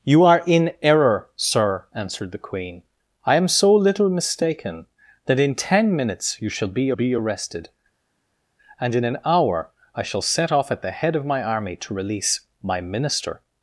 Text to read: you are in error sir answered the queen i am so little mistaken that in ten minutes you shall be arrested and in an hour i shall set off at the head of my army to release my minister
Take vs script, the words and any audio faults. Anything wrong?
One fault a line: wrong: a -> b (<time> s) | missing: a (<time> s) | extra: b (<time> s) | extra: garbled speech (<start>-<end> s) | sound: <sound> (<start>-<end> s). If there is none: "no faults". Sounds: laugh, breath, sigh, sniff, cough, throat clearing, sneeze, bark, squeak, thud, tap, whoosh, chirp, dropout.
extra: be (6.9 s)